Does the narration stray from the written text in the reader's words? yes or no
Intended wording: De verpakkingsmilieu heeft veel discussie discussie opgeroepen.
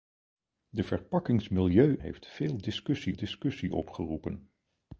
no